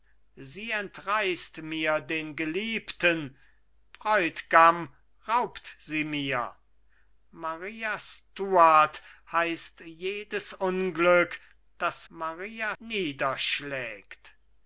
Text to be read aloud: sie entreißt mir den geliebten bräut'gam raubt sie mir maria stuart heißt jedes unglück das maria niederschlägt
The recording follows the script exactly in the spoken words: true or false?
true